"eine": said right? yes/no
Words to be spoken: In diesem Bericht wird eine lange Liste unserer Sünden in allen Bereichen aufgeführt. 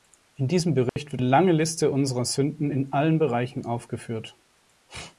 no